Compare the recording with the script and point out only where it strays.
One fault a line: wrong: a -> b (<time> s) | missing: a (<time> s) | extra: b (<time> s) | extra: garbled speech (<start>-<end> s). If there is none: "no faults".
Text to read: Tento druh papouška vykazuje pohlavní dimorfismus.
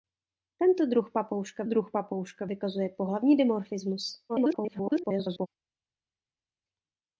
extra: druh papouška (1.6 s)
extra: garbled speech (4.3-5.5 s)